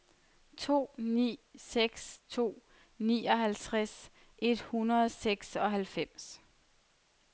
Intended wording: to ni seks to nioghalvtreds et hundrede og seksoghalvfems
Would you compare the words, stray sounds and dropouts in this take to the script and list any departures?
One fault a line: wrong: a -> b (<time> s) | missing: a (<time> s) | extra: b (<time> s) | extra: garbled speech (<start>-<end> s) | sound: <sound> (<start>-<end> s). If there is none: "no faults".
no faults